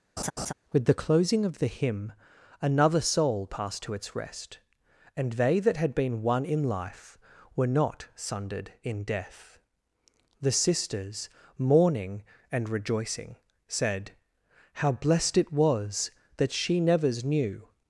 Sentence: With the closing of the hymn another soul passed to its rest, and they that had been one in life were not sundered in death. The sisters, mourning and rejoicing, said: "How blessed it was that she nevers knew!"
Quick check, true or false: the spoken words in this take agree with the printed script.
true